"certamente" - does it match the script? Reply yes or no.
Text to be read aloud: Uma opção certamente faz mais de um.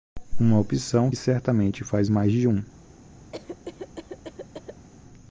yes